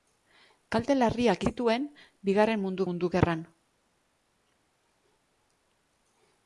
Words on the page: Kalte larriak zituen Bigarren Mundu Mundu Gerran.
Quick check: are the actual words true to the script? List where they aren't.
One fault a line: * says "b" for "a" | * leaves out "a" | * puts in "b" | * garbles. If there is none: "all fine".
all fine